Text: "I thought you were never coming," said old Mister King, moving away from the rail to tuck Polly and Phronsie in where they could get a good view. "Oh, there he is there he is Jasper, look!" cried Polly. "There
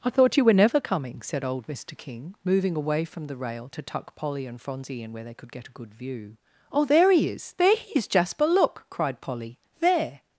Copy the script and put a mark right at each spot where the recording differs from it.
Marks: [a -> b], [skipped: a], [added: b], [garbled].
"I thought you were never coming," said old Mister King, moving away from the rail to tuck Polly and Phronsie in where they could get a good view. "Oh, there he is there he is Jasper, look!" cried Polly. "There